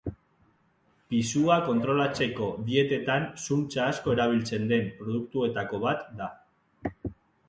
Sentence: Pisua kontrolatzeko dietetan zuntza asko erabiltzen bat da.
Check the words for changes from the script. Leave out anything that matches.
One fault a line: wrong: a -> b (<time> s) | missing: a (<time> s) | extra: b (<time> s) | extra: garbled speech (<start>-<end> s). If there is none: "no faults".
extra: den produktuetako (4.7 s)